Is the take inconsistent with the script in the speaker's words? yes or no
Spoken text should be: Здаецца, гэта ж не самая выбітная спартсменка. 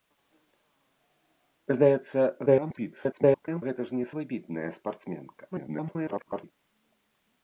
yes